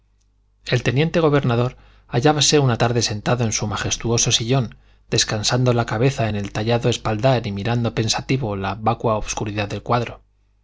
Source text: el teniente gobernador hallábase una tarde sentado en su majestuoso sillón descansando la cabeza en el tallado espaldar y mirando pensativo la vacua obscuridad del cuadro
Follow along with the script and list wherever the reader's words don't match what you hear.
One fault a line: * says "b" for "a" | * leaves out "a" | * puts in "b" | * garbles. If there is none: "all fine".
all fine